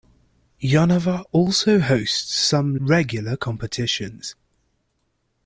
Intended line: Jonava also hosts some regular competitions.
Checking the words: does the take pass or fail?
pass